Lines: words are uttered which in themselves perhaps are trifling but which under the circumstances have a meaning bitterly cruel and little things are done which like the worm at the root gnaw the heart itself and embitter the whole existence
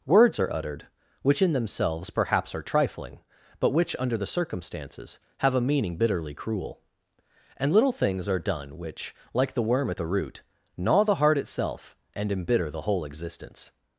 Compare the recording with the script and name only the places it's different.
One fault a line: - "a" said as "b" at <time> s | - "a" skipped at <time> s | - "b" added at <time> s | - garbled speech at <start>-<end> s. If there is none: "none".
none